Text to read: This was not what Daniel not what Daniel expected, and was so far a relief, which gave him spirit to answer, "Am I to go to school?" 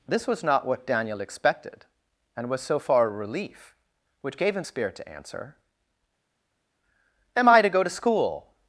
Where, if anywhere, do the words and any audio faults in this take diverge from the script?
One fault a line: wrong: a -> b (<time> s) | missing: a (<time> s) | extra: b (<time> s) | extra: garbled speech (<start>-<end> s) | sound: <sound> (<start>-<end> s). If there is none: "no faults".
missing: not what Daniel (1.2 s)